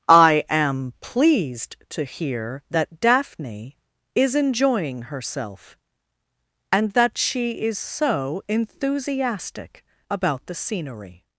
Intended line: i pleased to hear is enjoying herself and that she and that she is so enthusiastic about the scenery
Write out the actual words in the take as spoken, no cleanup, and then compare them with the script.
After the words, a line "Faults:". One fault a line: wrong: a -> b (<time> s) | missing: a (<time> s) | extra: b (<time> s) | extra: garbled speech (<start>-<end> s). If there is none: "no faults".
i am pleased to hear that daphne is enjoying herself and that she is so enthusiastic about the scenery
Faults:
extra: am (0.5 s)
extra: that daphne (2.7 s)
missing: and that she (7.6 s)